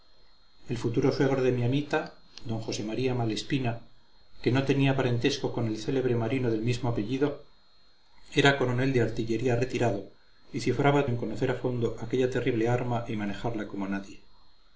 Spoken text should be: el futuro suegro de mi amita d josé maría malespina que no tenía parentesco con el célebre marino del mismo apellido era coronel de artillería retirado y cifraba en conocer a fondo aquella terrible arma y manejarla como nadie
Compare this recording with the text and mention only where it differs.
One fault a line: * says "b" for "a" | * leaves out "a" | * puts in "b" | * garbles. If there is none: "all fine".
all fine